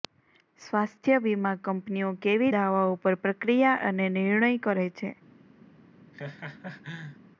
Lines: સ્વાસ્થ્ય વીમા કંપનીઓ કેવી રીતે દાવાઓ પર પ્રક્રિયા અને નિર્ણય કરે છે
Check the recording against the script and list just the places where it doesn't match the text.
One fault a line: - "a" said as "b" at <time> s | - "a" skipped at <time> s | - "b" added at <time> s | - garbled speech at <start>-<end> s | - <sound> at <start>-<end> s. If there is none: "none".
- "રીતે" skipped at 2.5 s
- laugh at 6.1-7.2 s